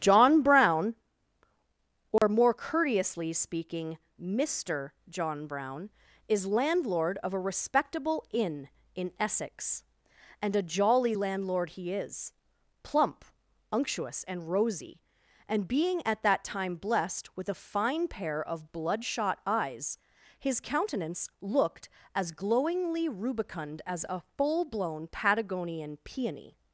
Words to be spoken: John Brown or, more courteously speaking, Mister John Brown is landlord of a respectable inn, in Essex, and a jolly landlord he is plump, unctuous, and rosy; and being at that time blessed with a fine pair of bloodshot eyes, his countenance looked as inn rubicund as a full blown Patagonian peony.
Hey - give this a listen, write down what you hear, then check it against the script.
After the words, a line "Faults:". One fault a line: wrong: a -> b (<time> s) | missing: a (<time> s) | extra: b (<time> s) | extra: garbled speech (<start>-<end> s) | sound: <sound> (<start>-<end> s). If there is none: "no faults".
John Brown or, more courteously speaking, Mister John Brown is landlord of a respectable inn, in Essex, and a jolly landlord he is plump, unctuous, and rosy; and being at that time blessed with a fine pair of bloodshot eyes, his countenance looked as glowingly rubicund as a full blown Patagonian peony.
Faults:
sound: dropout (2.2-2.2 s)
wrong: inn -> glowingly (22.3 s)